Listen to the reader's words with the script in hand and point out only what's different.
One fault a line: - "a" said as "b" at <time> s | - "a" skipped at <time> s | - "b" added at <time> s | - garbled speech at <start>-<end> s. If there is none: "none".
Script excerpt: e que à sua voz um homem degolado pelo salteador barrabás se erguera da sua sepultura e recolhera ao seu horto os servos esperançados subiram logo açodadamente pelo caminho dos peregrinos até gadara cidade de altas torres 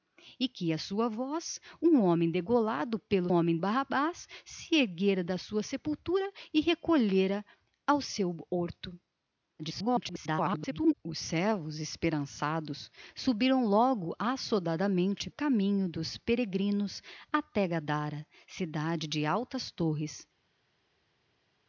- "salteador" said as "homem" at 3.3 s
- garbled speech at 9.6-10.9 s
- "pelo" skipped at 15.3 s